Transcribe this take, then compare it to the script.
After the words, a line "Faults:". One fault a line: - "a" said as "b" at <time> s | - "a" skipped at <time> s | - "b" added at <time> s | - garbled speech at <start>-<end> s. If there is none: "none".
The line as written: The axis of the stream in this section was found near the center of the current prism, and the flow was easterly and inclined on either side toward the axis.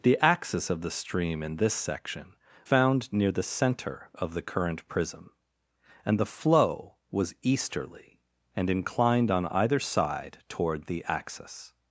The axis of the stream in this section found near the center of the current prism, and the flow was easterly and inclined on either side toward the axis.
Faults:
- "was" skipped at 2.3 s